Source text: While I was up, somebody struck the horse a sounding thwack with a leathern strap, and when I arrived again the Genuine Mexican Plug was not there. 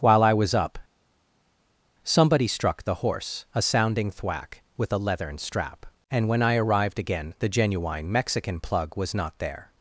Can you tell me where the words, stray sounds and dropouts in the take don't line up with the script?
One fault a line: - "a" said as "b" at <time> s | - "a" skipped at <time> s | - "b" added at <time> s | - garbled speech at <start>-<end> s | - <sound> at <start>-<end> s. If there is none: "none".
none